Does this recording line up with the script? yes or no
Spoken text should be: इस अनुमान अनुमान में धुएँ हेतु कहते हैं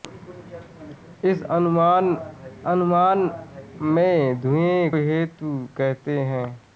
yes